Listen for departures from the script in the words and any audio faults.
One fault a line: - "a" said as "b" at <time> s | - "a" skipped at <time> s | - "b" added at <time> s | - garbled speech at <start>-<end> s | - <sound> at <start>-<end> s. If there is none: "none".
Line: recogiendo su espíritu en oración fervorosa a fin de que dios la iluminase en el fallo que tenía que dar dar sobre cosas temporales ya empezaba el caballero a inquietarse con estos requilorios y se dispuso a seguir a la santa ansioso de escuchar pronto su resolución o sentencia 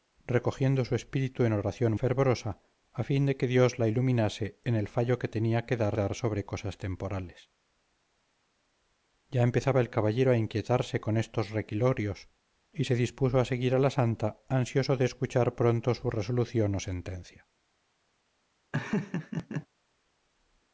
- laugh at 18.7-19.7 s